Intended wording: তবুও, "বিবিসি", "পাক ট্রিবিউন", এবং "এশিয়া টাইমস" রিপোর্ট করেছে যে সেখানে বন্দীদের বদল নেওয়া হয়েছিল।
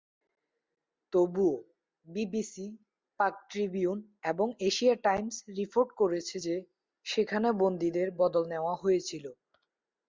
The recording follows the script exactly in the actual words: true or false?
true